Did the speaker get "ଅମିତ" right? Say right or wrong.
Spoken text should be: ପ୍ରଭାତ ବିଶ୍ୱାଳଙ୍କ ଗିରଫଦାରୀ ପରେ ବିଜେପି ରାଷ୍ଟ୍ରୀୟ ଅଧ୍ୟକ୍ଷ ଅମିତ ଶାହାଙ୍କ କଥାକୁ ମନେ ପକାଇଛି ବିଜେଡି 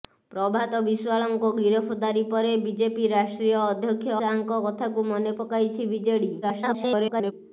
wrong